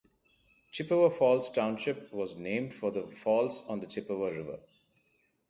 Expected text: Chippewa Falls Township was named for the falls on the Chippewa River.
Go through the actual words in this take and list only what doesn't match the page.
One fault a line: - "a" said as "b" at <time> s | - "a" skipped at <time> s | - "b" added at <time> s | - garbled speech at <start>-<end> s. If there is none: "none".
none